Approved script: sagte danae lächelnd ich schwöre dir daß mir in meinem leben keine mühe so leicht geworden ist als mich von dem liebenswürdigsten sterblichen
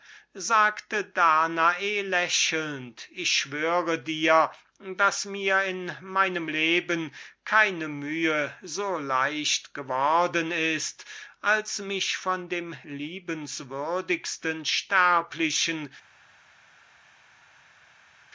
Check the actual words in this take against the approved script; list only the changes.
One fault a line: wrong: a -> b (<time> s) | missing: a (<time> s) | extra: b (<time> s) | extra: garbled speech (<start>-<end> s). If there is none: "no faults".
no faults